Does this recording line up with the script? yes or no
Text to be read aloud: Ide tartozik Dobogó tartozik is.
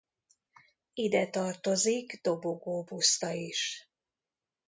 no